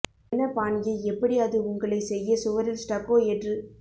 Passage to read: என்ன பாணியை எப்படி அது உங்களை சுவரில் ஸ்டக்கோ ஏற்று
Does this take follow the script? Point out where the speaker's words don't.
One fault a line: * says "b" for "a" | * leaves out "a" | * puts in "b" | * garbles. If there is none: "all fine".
* puts in "செய்ய"